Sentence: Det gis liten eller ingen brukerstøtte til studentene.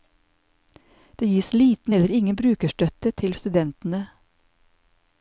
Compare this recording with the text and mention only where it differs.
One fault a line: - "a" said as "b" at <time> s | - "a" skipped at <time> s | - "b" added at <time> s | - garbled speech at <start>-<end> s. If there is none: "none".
none